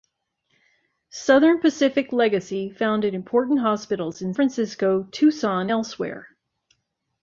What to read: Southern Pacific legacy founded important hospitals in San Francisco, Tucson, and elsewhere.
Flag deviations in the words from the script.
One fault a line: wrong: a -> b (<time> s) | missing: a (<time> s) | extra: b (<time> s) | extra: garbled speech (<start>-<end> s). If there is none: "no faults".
missing: San (4.3 s)
missing: and (5.7 s)